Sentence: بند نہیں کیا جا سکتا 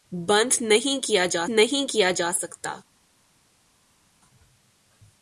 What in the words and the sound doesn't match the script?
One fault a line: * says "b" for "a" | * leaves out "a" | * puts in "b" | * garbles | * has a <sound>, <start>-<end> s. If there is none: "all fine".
* puts in "نہیں کیا جا"